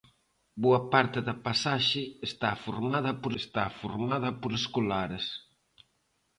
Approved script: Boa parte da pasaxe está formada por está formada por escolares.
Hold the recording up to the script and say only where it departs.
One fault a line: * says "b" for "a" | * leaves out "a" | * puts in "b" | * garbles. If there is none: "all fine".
all fine